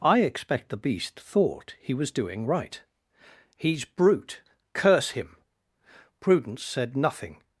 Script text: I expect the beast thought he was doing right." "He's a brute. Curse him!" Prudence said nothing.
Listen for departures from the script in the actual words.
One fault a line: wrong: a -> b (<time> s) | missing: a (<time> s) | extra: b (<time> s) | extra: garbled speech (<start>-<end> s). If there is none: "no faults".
missing: a (3.9 s)